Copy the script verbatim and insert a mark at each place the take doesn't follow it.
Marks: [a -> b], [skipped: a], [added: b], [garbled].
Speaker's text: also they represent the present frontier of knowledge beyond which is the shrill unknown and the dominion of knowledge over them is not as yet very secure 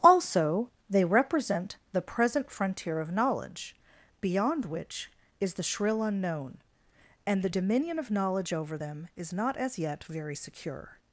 also they represent the present frontier of knowledge beyond which is the shrill unknown and the dominion of knowledge over them is not as yet very secure